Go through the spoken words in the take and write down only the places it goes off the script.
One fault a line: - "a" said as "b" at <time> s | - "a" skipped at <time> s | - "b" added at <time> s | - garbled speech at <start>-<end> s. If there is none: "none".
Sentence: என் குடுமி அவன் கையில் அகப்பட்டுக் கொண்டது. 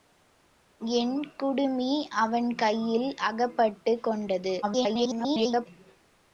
- garbled speech at 4.6-5.7 s